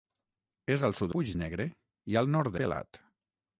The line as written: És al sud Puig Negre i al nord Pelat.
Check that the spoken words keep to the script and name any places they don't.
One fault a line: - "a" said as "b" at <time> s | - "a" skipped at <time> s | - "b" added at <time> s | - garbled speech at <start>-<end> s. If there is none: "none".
none